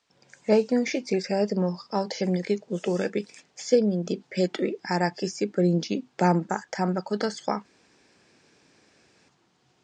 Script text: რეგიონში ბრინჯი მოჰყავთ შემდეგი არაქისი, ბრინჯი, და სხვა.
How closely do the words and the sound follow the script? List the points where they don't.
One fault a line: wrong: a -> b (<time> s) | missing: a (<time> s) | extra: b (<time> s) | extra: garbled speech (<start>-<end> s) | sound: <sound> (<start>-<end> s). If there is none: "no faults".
wrong: ბრინჯი -> ძირითადად (1.1 s)
extra: კულტურები სიმინდი ფეტვი (2.7 s)
extra: ბამბა თამბაქო (6.2 s)